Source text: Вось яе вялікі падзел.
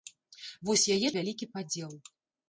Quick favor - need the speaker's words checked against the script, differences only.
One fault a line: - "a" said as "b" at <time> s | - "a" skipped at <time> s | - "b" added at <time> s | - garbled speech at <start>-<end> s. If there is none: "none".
none